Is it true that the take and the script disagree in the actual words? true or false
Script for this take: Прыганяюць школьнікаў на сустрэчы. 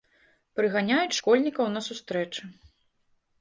false